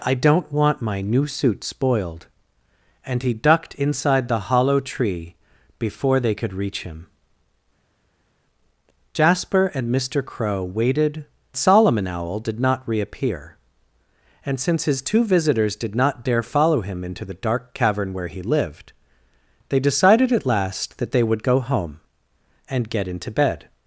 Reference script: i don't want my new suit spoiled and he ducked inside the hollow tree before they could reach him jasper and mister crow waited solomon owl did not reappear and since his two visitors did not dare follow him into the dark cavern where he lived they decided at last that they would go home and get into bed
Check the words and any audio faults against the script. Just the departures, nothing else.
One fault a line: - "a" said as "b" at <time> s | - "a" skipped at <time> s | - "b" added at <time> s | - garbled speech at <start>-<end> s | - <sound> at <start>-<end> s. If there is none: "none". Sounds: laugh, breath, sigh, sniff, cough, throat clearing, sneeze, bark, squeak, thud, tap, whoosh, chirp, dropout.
none